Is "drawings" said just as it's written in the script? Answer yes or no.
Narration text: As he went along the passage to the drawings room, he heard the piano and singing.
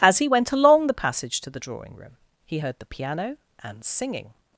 no